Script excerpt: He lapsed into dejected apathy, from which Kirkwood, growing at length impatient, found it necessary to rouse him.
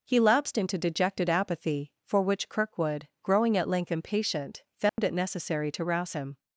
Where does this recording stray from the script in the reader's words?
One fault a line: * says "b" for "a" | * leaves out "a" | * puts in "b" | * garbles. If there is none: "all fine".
* says "for" for "from"